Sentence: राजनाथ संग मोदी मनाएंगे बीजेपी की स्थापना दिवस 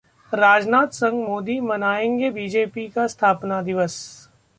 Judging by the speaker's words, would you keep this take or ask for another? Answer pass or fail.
fail